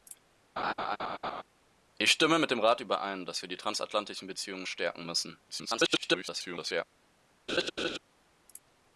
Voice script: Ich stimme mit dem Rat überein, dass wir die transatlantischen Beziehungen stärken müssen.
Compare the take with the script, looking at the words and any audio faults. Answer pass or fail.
fail